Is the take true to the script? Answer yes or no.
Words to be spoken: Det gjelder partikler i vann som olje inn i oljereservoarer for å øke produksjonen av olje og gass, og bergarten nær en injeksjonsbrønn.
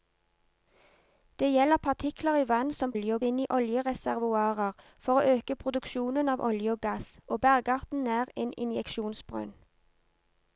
yes